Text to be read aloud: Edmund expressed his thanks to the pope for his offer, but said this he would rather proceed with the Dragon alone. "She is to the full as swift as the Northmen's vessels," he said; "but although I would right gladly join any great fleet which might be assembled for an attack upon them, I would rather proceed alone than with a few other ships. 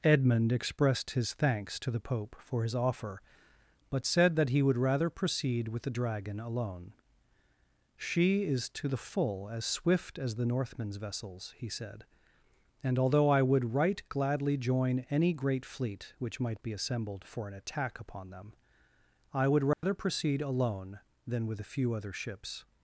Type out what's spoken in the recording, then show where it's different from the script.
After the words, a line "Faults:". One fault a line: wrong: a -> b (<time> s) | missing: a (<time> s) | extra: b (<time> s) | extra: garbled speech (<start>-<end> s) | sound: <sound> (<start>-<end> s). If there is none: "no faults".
Edmund expressed his thanks to the pope for his offer, but said that he would rather proceed with the Dragon alone. "She is to the full as swift as the Northmen's vessels," he said; "and although I would right gladly join any great fleet which might be assembled for an attack upon them, I would rather proceed alone than with a few other ships.
Faults:
wrong: this -> that (4.3 s)
wrong: but -> and (12.8 s)
sound: dropout (19.7-19.8 s)